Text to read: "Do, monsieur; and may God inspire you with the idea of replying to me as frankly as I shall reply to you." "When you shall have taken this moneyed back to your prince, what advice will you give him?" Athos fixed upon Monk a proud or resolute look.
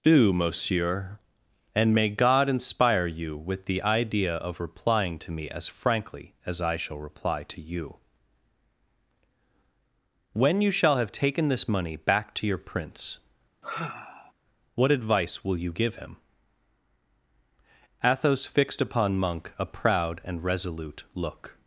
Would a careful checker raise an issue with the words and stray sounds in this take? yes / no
yes